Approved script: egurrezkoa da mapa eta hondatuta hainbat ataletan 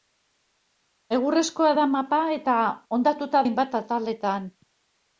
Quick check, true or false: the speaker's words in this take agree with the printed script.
true